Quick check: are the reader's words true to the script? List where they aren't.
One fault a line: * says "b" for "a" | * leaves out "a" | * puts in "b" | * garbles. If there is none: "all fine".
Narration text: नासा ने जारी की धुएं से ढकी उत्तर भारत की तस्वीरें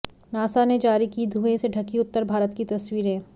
all fine